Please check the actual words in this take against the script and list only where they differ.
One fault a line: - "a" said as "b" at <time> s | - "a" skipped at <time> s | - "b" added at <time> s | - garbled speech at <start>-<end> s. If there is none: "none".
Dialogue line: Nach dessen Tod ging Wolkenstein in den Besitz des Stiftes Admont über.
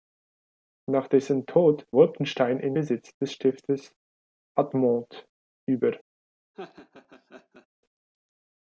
- "ging" skipped at 1.9 s
- "den" skipped at 2.8 s